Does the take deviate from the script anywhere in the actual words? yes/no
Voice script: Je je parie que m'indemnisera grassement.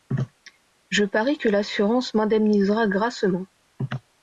yes